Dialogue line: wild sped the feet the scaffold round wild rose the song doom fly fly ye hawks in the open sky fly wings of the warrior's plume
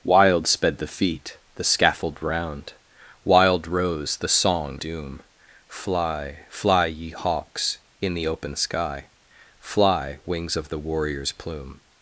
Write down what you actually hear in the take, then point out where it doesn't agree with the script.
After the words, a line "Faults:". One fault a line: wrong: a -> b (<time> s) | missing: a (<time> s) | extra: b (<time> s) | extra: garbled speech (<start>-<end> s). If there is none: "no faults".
wild sped the feet the scaffold round wild rose the song doom fly fly ye hawks in the open sky fly wings of the warrior's plume
Faults:
no faults